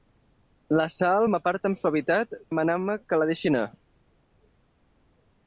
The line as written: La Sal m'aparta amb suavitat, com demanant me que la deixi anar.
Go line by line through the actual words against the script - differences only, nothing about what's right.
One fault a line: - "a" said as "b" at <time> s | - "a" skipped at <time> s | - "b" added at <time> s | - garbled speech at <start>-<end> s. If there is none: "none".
- "com" skipped at 2.4 s